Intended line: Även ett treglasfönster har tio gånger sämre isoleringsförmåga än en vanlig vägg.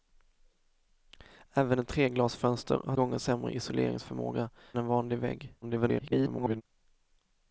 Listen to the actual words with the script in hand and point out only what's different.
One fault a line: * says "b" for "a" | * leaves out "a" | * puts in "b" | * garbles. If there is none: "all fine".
* leaves out "tio"
* leaves out "än"
* garbles